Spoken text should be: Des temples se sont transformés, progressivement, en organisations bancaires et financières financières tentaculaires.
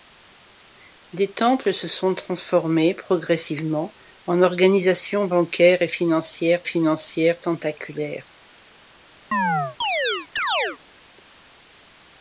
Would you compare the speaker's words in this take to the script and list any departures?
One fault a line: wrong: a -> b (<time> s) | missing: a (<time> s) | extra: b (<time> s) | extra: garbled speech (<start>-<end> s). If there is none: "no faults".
no faults